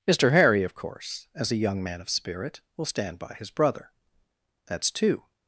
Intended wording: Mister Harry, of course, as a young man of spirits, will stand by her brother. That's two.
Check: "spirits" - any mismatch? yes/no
yes